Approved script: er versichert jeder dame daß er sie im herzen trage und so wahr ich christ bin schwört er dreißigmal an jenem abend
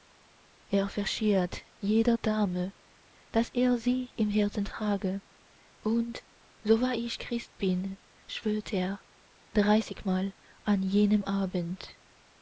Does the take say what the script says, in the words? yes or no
yes